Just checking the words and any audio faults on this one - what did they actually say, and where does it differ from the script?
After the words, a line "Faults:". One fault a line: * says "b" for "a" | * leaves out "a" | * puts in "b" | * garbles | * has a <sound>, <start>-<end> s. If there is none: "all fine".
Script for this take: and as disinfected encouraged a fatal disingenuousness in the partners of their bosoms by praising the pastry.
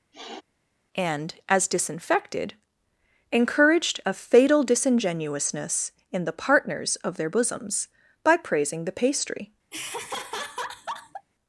and as disinfected encouraged a fatal disingenuousness in the partners of their bosoms by praising the pastry.
Faults:
* has a sniff, 0.1-0.4 s
* has a laugh, 9.7-11.3 s